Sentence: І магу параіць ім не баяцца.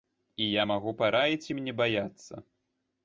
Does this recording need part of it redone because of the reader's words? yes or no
yes